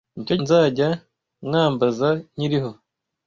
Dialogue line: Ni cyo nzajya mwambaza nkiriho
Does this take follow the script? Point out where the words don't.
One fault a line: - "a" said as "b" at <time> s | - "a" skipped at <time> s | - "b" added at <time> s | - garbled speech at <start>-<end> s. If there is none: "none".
none